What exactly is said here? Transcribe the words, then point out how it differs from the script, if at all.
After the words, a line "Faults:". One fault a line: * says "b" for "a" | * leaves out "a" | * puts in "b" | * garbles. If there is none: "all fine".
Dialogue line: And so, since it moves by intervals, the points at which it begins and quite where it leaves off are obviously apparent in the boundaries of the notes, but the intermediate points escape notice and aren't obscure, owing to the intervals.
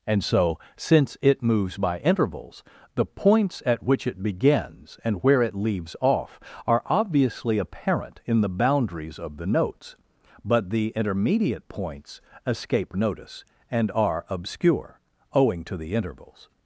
And so, since it moves by intervals, the points at which it begins and where it leaves off are obviously apparent in the boundaries of the notes, but the intermediate points escape notice and are obscure, owing to the intervals.
Faults:
* leaves out "quite"
* says "are" for "aren't"